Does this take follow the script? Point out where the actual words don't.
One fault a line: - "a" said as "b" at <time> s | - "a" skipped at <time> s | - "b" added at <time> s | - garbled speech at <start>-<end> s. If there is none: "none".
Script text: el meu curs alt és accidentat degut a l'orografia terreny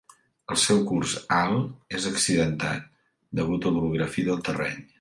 - "meu" said as "seu" at 0.6 s
- "del" added at 4.3 s